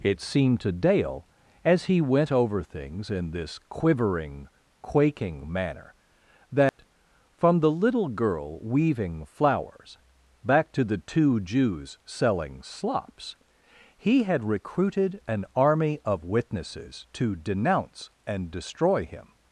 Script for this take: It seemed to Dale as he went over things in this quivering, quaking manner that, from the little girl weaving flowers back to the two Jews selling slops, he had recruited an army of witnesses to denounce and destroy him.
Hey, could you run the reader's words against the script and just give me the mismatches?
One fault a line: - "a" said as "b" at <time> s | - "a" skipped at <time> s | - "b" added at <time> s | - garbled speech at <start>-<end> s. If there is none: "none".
none